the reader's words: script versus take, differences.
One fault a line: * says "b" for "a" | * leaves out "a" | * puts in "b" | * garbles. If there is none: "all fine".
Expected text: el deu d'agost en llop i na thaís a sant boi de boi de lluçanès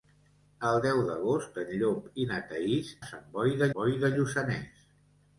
all fine